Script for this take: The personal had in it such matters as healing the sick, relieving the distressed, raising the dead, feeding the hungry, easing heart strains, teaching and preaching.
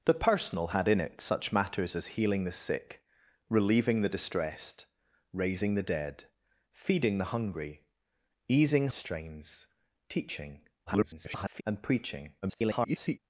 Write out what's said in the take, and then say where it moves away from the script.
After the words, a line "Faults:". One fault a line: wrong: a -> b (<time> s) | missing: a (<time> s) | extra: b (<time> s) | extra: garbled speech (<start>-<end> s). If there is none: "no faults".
The personal had in it such matters as healing the sick, relieving the distressed, raising the dead, feeding the hungry, easing strains, teaching [garbled] and preaching. [garbled]
Faults:
missing: heart (8.9 s)
extra: garbled speech (10.9-11.6 s)
extra: garbled speech (12.4-13.2 s)